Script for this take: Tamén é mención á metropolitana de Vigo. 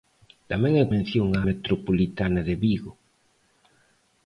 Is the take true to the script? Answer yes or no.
yes